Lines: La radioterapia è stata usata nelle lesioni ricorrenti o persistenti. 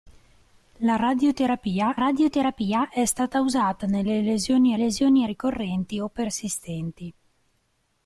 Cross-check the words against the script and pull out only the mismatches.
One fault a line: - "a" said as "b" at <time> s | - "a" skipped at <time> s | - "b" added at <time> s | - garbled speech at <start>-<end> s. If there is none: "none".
- "radioterapia" added at 1.9 s
- "lesioni" added at 4.7 s